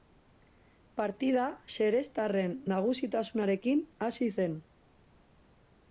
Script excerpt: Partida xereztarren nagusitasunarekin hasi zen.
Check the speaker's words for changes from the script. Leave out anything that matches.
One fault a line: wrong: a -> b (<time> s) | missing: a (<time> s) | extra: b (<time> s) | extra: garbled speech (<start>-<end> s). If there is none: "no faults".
no faults